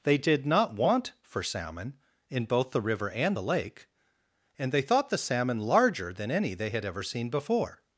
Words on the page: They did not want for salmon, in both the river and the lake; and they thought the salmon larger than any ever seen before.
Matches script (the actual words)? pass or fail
fail